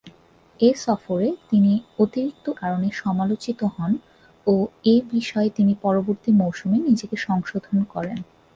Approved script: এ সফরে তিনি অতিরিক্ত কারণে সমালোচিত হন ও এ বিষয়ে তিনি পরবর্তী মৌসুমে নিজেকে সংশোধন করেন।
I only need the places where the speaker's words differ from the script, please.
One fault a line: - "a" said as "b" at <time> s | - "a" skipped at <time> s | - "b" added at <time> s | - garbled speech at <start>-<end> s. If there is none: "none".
none